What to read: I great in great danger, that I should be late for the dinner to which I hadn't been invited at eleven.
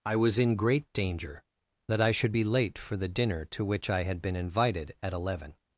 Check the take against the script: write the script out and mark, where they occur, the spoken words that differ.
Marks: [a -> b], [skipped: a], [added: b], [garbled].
I [great -> was] in great danger, that I should be late for the dinner to which I [hadn't -> had] been invited at eleven.